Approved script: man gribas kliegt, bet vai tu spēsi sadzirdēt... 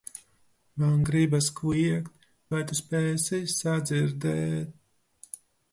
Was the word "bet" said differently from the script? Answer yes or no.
yes